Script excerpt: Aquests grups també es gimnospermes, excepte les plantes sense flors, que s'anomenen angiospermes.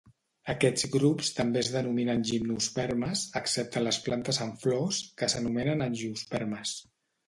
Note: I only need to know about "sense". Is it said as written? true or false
false